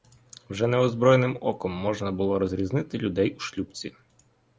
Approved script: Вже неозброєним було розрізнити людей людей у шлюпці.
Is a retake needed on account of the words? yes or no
yes